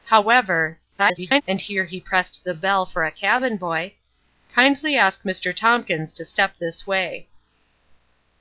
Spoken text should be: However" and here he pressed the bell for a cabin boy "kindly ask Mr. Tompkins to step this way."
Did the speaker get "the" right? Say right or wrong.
right